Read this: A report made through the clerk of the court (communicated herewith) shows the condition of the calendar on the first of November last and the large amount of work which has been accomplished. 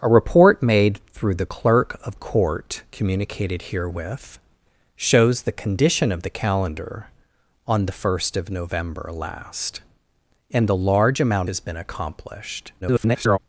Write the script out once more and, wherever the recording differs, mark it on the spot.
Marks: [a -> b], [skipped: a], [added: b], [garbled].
A report made through the clerk of [skipped: the] court (communicated herewith) shows the condition of the calendar on the first of November last and the large amount [skipped: of work which] has been accomplished. [garbled]